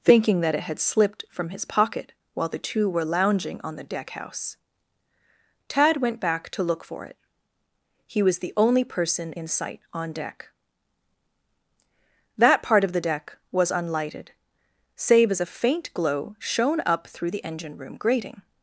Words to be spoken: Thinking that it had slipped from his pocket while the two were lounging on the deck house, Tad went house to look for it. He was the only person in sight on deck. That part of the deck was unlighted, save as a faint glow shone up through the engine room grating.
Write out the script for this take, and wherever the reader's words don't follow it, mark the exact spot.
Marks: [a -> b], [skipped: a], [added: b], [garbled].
Thinking that it had slipped from his pocket while the two were lounging on the deck house, Tad went [house -> back] to look for it. He was the only person in sight on deck. That part of the deck was unlighted, save as a faint glow shone up through the engine room grating.